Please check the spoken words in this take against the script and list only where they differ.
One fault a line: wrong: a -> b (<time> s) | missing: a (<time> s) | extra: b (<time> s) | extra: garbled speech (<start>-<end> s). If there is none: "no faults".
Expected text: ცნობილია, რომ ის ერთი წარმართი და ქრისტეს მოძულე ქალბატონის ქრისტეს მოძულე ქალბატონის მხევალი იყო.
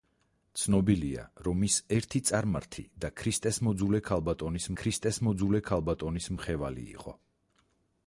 no faults